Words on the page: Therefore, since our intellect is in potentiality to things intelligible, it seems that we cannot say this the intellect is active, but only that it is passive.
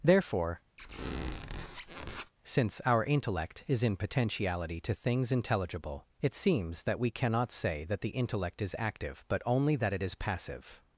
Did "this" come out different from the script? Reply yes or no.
yes